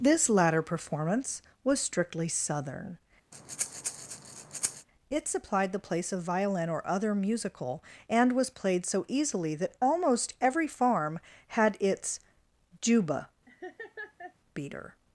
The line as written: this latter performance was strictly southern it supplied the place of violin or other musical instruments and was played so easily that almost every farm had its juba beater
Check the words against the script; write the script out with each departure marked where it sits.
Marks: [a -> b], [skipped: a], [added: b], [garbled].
this latter performance was strictly southern it supplied the place of violin or other musical [skipped: instruments] and was played so easily that almost every farm had its juba beater